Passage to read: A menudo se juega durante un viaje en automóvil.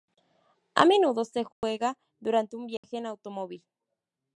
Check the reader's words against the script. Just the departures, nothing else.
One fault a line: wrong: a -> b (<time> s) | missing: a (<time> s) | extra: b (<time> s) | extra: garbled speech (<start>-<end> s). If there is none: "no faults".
no faults